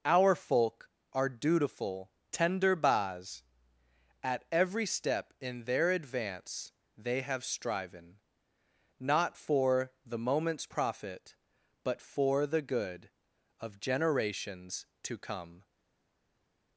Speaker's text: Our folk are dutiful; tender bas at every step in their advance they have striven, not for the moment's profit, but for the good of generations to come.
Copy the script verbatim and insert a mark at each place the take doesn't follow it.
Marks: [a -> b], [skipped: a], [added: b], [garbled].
Our folk are dutiful; tender bas at every step in their advance they have striven, not for the moment's profit, but for the good of generations to come.